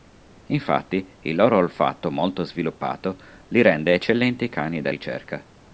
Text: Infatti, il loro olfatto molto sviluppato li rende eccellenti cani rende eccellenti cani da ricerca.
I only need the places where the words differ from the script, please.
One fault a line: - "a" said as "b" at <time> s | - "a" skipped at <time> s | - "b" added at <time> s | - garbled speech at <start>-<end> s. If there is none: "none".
- "rende eccellenti cani" skipped at 4.8 s